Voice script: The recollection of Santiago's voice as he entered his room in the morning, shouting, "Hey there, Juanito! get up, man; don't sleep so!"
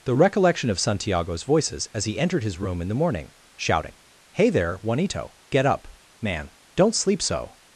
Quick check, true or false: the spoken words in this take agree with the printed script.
false